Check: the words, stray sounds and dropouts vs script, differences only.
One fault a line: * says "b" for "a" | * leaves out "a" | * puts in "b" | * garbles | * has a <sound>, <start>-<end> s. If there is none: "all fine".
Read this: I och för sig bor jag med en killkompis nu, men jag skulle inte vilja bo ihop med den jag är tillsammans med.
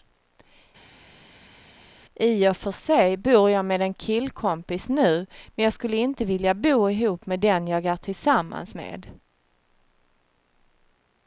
all fine